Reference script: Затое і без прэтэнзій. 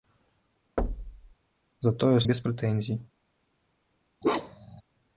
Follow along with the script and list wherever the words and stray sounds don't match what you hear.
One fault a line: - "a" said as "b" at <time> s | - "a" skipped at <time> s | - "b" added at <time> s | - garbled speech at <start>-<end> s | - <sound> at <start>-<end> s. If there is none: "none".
- thud at 0.8-1.3 s
- bark at 4.2-4.8 s